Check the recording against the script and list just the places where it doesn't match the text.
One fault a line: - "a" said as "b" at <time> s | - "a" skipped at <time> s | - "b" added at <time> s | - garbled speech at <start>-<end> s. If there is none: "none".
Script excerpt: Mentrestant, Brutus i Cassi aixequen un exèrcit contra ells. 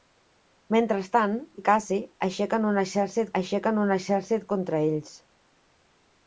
- "Brutus" skipped at 1.4 s
- "aixequen un exèrcit" added at 3.4 s